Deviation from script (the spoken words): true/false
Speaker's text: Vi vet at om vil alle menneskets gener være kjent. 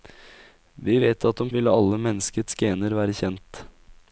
false